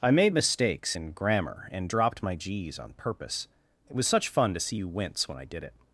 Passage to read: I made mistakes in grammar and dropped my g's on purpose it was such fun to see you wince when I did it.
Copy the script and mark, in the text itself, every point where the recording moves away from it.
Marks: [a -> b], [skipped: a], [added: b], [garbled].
I made mistakes in grammar and dropped my g's on purpose it was such fun to see you wince when I did it.